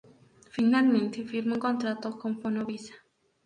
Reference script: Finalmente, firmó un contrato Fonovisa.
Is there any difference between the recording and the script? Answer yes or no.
yes